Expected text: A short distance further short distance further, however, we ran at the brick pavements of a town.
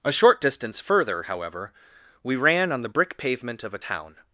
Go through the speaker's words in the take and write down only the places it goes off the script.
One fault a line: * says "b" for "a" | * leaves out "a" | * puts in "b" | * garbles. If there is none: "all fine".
* leaves out "short distance further"
* says "on" for "at"
* says "pavement" for "pavements"